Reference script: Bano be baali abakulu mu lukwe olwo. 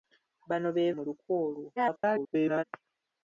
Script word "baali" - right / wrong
wrong